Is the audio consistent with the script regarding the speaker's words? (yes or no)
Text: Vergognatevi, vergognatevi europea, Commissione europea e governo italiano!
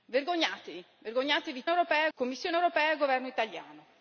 yes